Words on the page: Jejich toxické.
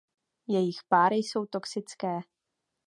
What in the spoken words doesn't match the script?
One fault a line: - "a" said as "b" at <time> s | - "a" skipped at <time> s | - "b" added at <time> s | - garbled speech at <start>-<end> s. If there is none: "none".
- "páry jsou" added at 0.9 s